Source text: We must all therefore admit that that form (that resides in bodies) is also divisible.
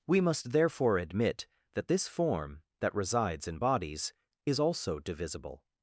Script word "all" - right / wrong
wrong